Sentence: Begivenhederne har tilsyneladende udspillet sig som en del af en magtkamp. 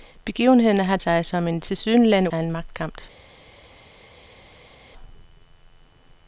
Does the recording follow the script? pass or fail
fail